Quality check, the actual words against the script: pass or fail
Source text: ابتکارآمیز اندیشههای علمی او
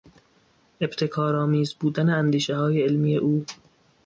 fail